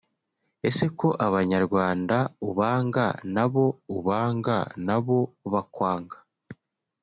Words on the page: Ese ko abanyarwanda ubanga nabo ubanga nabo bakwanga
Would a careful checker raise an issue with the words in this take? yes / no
no